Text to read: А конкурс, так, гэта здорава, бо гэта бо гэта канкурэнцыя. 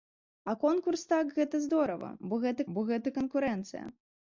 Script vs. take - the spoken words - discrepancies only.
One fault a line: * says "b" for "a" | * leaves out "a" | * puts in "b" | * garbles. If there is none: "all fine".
all fine